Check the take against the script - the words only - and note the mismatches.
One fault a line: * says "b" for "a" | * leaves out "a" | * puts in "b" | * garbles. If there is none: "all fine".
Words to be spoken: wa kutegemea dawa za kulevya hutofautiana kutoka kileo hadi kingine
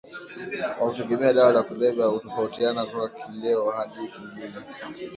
all fine